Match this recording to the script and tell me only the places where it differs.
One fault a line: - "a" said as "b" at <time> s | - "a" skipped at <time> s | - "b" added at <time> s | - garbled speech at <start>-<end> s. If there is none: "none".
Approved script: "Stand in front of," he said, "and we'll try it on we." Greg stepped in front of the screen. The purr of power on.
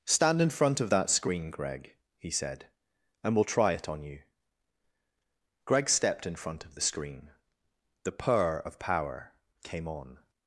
- "that screen Greg" added at 0.9 s
- "we" said as "you" at 4.0 s
- "came" added at 9.6 s